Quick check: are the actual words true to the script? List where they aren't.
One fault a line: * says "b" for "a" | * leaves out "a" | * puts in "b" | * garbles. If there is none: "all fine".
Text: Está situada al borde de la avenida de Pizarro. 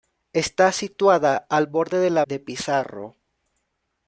* leaves out "avenida"